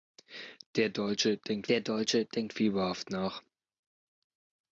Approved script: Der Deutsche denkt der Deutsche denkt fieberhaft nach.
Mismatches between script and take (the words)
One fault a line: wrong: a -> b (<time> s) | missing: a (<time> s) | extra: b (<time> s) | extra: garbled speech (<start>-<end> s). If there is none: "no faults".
no faults